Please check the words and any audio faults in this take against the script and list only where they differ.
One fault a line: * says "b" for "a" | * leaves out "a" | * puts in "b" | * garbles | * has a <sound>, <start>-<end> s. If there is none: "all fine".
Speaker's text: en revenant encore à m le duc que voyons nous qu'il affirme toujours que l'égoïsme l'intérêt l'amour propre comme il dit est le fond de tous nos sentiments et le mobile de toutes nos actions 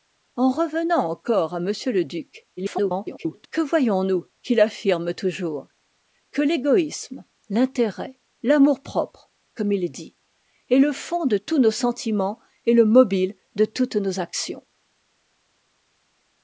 * garbles